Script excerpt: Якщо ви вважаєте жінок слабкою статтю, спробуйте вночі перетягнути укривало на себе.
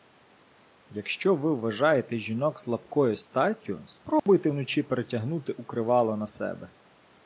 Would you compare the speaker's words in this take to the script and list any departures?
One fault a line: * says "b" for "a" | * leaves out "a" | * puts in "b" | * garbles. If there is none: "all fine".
all fine